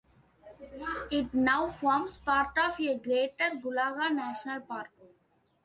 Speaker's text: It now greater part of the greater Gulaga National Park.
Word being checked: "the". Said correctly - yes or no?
no